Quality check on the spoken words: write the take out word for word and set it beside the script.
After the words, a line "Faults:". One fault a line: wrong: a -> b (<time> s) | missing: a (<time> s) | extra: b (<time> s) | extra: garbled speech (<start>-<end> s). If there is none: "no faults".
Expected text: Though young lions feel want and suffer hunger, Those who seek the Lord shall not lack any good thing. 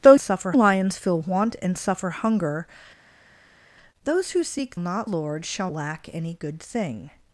Though suffer lions feel want and suffer hunger, Those who seek not Lord shall lack any good thing.
Faults:
wrong: young -> suffer (0.2 s)
wrong: the -> not (4.8 s)
missing: not (5.7 s)